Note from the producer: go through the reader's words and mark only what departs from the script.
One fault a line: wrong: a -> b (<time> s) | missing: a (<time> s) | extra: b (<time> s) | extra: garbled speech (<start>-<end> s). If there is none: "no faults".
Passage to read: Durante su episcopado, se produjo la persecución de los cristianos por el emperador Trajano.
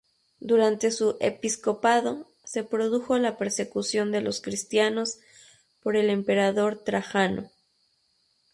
no faults